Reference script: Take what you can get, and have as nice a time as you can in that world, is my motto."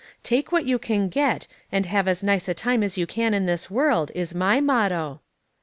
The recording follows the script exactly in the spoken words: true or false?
false